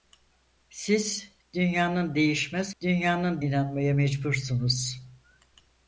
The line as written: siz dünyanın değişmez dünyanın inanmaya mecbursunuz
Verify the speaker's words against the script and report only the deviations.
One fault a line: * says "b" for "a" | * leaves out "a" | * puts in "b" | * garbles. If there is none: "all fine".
all fine